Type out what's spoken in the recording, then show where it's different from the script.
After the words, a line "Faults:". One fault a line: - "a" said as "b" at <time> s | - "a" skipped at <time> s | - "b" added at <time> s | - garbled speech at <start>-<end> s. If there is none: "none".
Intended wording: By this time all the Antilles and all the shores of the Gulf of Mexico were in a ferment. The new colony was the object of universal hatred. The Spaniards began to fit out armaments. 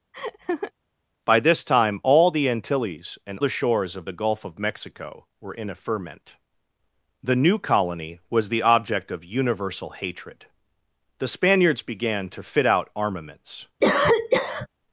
By this time all the Antilles and the shores of the Gulf of Mexico were in a ferment. The new colony was the object of universal hatred. The Spaniards began to fit out armaments.
Faults:
- "all" skipped at 3.4 s